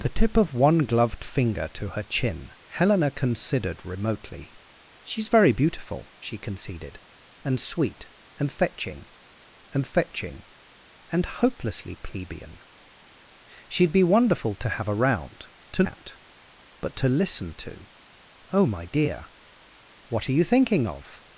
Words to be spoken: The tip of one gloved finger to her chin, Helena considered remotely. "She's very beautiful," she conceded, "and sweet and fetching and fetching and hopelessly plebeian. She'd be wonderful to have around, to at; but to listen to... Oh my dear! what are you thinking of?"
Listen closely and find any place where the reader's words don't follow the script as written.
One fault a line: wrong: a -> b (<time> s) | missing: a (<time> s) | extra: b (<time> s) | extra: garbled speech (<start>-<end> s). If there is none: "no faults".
no faults